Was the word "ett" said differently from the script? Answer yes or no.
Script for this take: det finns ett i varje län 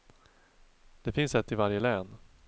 no